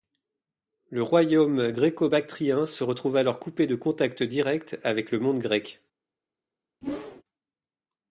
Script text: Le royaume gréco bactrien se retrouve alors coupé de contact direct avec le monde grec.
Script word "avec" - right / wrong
right